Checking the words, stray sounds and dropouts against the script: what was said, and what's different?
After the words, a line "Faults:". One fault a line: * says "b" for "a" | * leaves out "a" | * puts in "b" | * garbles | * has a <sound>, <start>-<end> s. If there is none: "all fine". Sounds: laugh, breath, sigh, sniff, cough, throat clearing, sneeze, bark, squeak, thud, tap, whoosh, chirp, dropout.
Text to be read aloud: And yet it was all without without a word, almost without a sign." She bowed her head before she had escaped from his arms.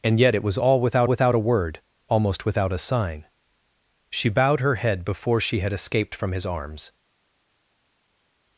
And yet it was all without without a word, almost without a sign." She bowed her head before she had escaped from his arms.
Faults:
all fine